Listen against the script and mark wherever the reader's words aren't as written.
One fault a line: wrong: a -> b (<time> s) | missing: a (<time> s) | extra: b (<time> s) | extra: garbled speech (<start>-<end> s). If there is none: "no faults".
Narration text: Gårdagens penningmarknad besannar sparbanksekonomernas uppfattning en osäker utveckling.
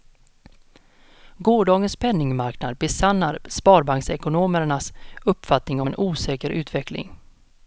no faults